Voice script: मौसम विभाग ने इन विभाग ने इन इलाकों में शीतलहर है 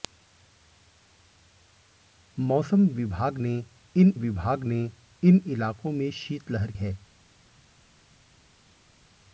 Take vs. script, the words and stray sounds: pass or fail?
pass